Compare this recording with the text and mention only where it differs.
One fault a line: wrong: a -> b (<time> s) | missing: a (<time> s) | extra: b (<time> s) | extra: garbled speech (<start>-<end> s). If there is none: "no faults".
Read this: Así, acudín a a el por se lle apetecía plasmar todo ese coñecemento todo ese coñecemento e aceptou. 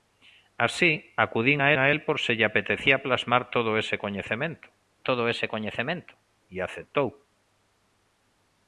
no faults